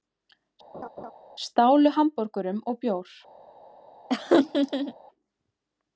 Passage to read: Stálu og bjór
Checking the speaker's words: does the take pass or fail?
fail